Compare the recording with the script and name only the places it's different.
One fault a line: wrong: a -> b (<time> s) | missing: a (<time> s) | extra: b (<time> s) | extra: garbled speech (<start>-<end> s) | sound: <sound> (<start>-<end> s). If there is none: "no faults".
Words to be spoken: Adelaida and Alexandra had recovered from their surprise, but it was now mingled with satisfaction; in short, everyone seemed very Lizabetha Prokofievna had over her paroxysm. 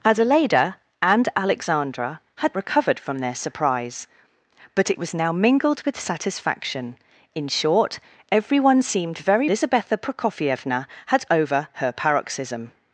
no faults